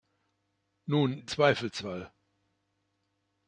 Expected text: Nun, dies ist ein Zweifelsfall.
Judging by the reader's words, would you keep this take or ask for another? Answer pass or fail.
fail